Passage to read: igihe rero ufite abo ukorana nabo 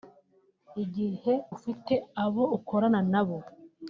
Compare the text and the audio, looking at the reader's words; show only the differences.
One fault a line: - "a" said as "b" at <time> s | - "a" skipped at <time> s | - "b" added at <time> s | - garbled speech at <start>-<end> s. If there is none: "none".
- "rero" skipped at 1.3 s